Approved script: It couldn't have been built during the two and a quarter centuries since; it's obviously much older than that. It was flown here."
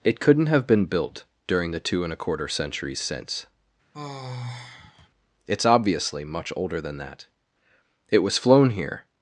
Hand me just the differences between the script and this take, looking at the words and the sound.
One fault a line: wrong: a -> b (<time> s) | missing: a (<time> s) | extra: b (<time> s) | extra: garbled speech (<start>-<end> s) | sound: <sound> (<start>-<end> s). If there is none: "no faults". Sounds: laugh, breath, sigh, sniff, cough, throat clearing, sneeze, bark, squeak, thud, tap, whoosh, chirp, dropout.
sound: sigh (3.9-5.1 s)